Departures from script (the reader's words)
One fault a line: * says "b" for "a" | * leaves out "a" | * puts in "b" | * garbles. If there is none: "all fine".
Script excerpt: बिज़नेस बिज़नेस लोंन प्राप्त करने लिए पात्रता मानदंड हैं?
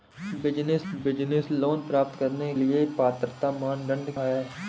all fine